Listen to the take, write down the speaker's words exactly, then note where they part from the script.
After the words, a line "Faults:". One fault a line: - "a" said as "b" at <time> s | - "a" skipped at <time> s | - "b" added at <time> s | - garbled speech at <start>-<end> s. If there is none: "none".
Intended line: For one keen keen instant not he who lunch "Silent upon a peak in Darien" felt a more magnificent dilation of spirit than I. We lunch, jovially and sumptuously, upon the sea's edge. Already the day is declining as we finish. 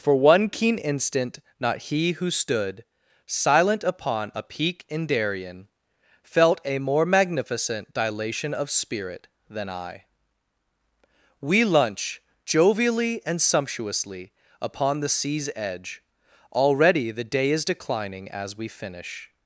For one keen instant not he who stood "Silent upon a peak in Darien" felt a more magnificent dilation of spirit than I. We lunch, jovially and sumptuously, upon the sea's edge. Already the day is declining as we finish.
Faults:
- "keen" skipped at 0.8 s
- "lunch" said as "stood" at 2.3 s